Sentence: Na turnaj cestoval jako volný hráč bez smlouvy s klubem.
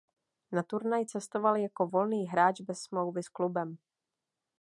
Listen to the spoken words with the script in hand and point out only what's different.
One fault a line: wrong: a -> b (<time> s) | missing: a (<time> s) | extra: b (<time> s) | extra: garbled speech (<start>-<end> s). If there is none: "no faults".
no faults